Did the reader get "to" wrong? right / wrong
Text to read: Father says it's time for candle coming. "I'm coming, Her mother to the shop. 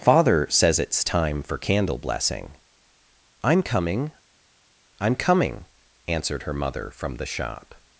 wrong